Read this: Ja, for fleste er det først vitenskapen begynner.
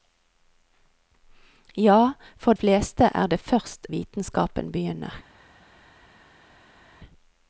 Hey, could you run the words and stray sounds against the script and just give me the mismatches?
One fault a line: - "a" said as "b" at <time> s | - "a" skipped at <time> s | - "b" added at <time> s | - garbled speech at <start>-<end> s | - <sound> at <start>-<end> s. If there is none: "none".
none